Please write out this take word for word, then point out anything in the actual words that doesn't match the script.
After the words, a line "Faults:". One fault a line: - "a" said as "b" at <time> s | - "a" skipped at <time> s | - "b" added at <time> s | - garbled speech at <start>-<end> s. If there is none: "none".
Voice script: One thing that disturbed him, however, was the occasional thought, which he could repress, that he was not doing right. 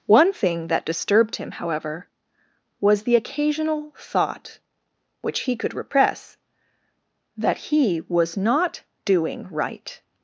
One thing that disturbed him, however, was the occasional thought, which he could repress, that he was not doing right.
Faults:
none